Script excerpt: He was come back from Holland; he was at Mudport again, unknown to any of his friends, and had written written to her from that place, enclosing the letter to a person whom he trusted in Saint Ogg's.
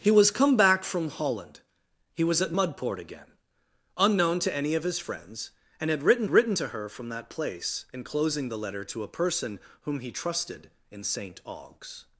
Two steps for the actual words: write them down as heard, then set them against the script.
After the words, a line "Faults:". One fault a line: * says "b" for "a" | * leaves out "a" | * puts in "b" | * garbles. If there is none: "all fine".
He was come back from Holland; he was at Mudport again, unknown to any of his friends, and had written written to her from that place, enclosing the letter to a person whom he trusted in Saint Ogg's.
Faults:
all fine